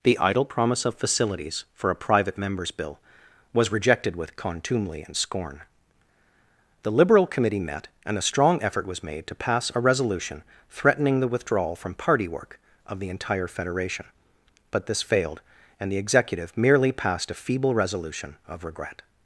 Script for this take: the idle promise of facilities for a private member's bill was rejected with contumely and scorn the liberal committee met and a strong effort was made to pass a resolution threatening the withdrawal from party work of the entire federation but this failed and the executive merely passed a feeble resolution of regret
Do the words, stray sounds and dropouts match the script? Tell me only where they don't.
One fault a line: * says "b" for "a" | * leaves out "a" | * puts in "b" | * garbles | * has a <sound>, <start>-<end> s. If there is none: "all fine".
all fine